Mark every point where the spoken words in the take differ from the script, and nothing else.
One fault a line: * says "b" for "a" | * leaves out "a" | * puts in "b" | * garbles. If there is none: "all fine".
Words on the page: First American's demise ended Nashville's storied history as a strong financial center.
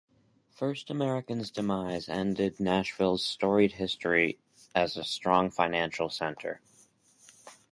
all fine